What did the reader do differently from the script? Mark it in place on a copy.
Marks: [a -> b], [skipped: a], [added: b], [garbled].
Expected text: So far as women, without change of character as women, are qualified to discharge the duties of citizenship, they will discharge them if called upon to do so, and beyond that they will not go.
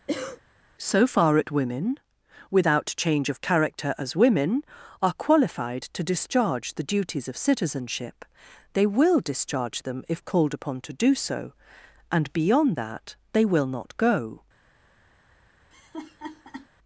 So far [as -> at] women, without change of character as women, are qualified to discharge the duties of citizenship, they will discharge them if called upon to do so, and beyond that they will not go.